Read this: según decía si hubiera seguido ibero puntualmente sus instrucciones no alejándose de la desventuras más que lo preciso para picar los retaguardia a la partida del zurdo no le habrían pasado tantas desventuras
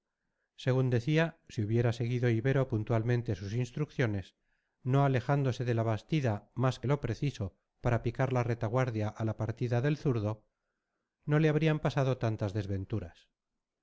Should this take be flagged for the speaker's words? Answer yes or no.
yes